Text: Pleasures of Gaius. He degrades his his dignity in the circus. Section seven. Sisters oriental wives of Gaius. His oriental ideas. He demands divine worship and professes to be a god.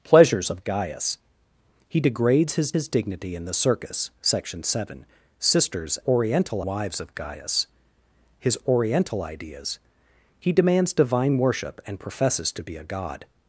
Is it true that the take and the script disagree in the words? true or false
false